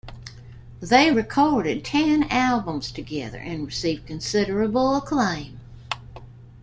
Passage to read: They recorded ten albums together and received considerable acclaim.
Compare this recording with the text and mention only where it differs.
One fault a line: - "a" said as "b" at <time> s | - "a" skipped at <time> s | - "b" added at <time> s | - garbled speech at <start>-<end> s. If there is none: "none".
none